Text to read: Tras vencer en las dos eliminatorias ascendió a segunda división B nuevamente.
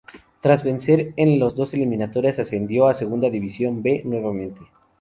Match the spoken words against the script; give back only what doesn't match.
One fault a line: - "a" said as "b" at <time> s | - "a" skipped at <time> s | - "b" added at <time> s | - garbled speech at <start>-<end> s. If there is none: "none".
none